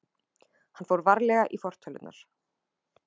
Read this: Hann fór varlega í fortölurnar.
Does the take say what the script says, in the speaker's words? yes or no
yes